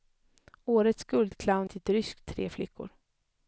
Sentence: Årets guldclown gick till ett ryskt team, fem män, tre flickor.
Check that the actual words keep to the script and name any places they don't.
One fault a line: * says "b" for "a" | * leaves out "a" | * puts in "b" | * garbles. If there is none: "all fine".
* leaves out "gick"
* leaves out "team fem män"